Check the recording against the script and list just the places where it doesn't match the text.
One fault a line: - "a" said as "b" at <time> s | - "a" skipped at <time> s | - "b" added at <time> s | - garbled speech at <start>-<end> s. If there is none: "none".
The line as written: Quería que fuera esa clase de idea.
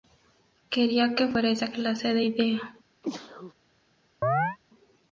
none